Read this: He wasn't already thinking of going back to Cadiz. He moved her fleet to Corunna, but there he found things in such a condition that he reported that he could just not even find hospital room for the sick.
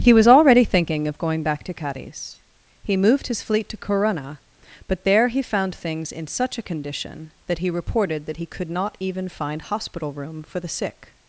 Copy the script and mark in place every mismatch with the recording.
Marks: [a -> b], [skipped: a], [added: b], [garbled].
He [wasn't -> was] already thinking of going back to Cadiz. He moved [her -> his] fleet to Corunna, but there he found things in such a condition that he reported that he could [skipped: just] not even find hospital room for the sick.